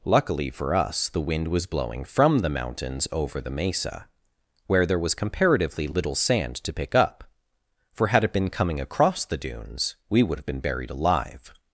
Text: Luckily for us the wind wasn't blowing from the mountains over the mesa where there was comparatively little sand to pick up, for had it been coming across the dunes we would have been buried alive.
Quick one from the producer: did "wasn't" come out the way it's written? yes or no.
no